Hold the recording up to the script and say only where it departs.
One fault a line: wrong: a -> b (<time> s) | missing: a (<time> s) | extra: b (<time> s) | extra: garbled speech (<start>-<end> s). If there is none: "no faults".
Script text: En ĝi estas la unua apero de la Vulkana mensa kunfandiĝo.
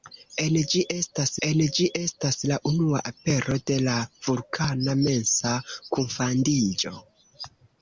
extra: en ĝi estas (1.5 s)